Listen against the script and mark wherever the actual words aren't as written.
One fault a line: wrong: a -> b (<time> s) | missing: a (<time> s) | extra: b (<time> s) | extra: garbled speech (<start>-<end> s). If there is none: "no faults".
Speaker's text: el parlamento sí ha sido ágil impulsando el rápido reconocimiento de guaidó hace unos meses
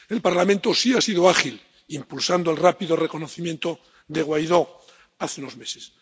no faults